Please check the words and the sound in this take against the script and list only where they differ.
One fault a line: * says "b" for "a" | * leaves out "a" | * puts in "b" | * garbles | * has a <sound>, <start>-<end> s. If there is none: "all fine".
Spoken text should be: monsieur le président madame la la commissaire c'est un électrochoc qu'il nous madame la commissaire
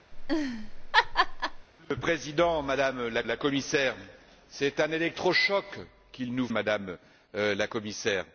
* has a laugh, 0.1-1.7 s